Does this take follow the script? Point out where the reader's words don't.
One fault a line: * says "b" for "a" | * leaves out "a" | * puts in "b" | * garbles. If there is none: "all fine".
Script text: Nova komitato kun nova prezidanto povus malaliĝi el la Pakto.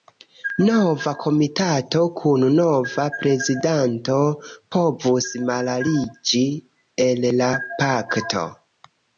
all fine